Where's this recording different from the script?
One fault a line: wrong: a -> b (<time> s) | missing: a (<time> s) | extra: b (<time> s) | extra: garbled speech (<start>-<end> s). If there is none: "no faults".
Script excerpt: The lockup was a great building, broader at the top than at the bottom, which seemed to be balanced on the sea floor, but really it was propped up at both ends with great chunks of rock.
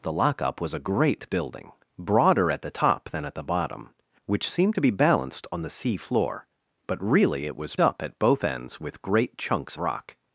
missing: propped (7.7 s)
missing: of (9.8 s)